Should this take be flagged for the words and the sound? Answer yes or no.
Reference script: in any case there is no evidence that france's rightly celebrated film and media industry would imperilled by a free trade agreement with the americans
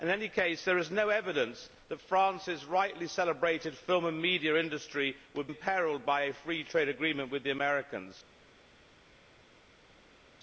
no